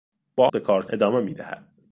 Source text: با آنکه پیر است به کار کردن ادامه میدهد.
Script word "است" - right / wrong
wrong